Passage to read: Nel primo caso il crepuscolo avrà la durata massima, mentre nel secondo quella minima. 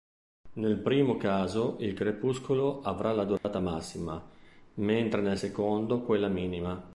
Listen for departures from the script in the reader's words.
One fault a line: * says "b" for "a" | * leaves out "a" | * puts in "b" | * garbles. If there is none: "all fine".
all fine